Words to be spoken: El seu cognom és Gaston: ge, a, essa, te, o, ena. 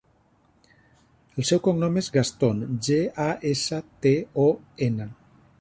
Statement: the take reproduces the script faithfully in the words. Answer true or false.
true